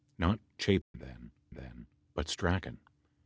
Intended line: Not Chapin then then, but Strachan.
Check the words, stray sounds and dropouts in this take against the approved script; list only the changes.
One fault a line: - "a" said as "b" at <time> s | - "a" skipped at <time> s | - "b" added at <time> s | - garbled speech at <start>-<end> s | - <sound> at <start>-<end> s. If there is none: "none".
- dropout at 0.8-0.9 s